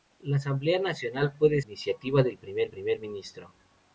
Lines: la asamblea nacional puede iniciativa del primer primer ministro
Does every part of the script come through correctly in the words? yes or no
yes